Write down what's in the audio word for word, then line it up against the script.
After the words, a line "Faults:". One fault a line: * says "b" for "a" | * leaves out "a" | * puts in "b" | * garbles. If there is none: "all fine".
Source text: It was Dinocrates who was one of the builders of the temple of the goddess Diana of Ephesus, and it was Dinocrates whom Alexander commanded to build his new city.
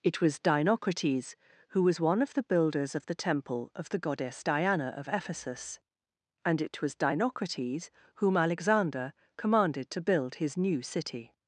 It was Dinocrates who was one of the builders of the temple of the goddess Diana of Ephesus, and it was Dinocrates whom Alexander commanded to build his new city.
Faults:
all fine